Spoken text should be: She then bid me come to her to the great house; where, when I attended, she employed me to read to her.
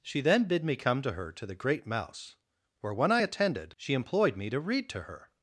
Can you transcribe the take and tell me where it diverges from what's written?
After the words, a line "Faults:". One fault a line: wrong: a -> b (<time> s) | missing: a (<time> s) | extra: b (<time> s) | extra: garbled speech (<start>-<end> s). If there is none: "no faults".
She then bid me come to her to the great mouse; where, when I attended, she employed me to read to her.
Faults:
wrong: house -> mouse (1.9 s)